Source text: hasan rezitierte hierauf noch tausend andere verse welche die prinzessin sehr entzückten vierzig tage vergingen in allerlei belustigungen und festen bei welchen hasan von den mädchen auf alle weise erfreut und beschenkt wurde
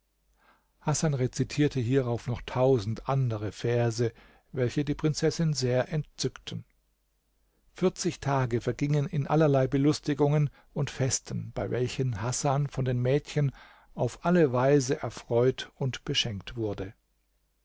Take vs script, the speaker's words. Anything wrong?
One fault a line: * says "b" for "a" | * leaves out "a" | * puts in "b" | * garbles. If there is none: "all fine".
all fine